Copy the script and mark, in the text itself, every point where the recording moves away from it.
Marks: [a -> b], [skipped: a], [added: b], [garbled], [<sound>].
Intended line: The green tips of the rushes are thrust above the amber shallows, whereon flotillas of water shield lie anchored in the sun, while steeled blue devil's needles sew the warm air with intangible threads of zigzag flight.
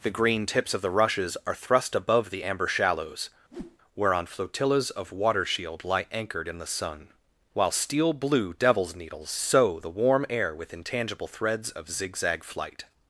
The green tips of the rushes are thrust above the amber shallows, [whoosh] whereon flotillas of water shield lie anchored in the sun, while [steeled -> steel] blue devil's needles sew the warm air with intangible threads of zigzag flight.